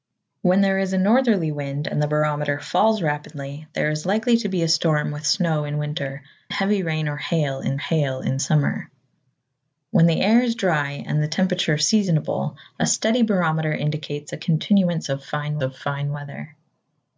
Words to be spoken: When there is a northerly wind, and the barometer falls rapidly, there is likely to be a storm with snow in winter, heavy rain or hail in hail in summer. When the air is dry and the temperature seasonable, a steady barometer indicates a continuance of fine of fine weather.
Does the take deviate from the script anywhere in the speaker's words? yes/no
no